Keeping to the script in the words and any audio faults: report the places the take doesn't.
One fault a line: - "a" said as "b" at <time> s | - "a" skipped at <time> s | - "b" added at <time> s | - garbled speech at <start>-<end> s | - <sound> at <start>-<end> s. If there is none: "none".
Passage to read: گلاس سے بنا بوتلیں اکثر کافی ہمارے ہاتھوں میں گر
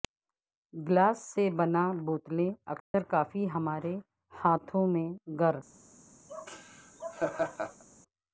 - dropout at 2.8-2.9 s
- laugh at 6.3-7.8 s